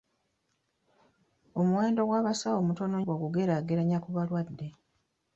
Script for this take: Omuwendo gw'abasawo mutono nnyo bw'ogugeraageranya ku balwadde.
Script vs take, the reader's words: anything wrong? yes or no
yes